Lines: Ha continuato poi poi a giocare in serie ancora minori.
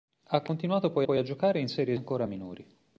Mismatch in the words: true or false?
false